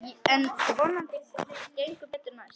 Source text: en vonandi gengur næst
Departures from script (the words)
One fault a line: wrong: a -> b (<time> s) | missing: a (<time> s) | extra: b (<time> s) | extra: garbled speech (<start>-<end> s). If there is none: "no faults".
extra: betur (2.1 s)